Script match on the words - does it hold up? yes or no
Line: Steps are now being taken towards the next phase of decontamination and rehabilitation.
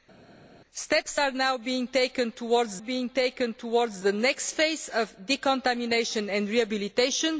no